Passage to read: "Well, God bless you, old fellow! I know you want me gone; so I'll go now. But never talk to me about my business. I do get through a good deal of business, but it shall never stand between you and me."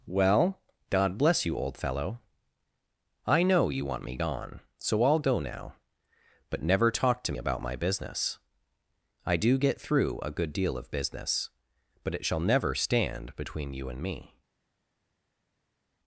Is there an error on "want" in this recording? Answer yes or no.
no